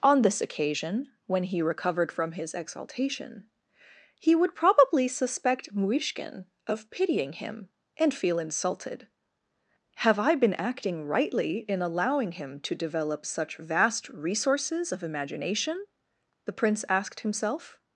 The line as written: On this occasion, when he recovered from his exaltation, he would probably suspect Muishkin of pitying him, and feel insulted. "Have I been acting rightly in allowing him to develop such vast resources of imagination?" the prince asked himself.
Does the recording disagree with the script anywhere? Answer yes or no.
no